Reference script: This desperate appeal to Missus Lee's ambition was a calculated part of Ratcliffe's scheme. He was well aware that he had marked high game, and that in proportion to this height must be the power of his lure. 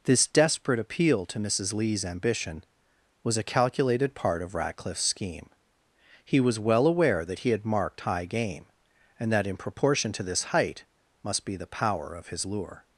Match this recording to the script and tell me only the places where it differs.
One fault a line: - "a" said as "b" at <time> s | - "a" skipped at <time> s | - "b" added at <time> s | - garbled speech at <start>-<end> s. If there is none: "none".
none